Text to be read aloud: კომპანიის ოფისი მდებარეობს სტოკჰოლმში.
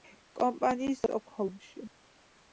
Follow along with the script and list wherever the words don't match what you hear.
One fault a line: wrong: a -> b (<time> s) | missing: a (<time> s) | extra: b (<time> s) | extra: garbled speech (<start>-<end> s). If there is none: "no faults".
missing: ოფისი მდებარეობს (1.0 s)